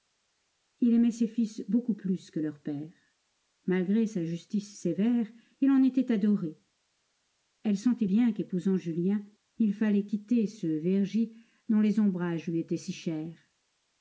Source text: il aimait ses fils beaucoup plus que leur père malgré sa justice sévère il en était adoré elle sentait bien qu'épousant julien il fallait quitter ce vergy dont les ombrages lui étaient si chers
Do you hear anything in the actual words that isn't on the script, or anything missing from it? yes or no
no